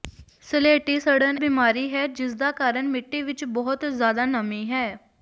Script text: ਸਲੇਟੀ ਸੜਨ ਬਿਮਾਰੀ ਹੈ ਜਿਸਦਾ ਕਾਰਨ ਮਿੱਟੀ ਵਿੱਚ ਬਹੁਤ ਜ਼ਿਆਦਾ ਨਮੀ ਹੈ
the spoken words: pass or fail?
pass